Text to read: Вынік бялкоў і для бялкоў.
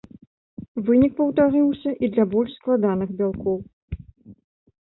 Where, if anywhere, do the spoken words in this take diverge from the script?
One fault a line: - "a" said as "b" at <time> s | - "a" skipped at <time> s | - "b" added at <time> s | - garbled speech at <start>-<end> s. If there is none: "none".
- "бялкоў" said as "паўтарыўся" at 1.2 s
- "больш складаных" added at 2.4 s